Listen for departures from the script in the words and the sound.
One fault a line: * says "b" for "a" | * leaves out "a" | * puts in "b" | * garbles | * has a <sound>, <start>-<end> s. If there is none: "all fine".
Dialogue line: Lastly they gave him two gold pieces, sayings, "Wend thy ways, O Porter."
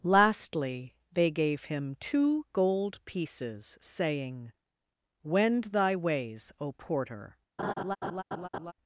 * says "saying" for "sayings"
* has a laugh, 7.6-8.7 s